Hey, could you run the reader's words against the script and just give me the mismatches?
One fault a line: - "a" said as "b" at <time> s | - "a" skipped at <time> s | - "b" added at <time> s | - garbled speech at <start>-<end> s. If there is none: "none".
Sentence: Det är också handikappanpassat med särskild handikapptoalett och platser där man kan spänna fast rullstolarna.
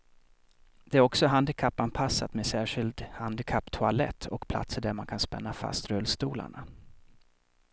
none